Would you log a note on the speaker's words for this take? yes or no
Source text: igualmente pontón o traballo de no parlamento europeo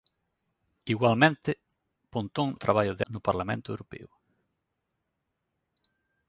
no